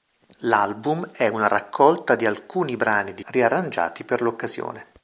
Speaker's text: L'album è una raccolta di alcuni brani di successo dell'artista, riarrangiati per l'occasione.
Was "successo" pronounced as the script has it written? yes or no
no